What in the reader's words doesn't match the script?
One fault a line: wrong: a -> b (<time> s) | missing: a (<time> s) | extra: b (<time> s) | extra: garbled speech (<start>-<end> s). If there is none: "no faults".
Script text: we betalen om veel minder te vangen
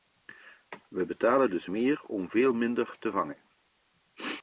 extra: dus meer (1.5 s)